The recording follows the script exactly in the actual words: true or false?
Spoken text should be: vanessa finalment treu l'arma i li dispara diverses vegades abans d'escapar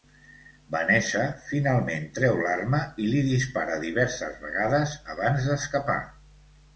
true